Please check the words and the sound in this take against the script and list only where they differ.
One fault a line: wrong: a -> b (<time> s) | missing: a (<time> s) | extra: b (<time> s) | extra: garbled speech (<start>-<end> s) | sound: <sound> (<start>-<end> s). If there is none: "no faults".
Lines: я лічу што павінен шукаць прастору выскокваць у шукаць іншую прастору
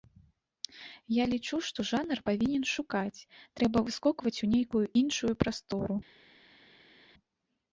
extra: жанр (1.9 s)
wrong: прастору -> трэба (3.6 s)
wrong: шукаць -> нейкую (4.6 s)